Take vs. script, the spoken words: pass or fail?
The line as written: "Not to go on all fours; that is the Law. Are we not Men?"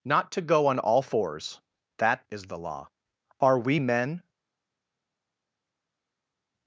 fail